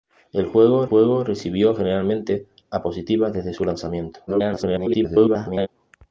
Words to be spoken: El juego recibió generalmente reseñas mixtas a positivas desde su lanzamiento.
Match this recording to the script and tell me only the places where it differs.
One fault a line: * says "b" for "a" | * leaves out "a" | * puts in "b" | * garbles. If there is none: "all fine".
* puts in "juego"
* leaves out "reseñas mixtas"
* garbles